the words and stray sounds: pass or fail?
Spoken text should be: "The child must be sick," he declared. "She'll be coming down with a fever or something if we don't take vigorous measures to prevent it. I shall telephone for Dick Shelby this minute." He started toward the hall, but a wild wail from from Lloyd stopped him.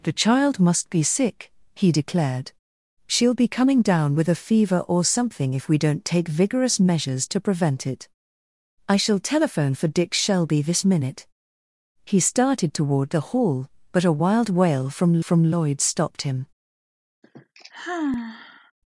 fail